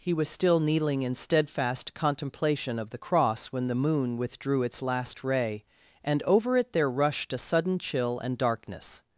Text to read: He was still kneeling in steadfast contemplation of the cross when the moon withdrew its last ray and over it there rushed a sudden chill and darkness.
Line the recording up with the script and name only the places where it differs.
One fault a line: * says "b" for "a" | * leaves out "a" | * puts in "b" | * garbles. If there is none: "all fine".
all fine